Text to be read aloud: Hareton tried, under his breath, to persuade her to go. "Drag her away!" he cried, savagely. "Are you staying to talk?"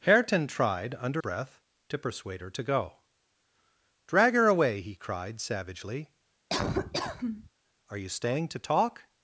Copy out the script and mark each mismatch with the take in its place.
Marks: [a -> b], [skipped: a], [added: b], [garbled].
Hareton tried, under [skipped: his] breath, to persuade her to go. "Drag her away!" he cried, savagely. "Are you staying to talk?"